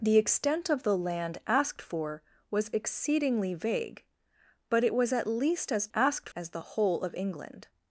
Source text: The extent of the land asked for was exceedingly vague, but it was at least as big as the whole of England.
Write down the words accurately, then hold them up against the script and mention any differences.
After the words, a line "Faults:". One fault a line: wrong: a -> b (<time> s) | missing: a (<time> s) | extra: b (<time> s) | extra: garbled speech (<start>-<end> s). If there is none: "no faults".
The extent of the land asked for was exceedingly vague, but it was at least as asked as the whole of England.
Faults:
wrong: big -> asked (5.9 s)